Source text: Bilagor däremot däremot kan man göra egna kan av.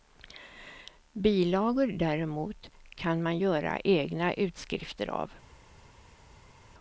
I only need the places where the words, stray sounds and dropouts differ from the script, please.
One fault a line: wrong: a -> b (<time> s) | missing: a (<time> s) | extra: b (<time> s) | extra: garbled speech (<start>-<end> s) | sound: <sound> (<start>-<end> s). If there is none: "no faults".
missing: däremot (2.7 s)
wrong: kan -> utskrifter (4.3 s)